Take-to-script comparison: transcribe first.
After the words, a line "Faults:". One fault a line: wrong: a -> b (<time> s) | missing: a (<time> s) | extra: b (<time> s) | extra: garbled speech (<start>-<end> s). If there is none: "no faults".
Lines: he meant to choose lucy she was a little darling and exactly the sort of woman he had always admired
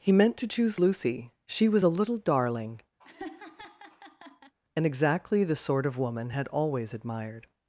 he meant to choose lucy she was a little darling and exactly the sort of woman had always admired
Faults:
missing: he (6.3 s)